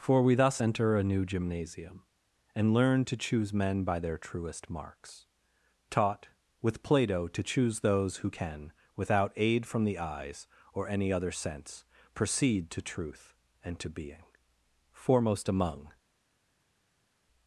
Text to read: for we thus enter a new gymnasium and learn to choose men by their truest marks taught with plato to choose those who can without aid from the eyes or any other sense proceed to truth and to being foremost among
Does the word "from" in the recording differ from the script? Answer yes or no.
no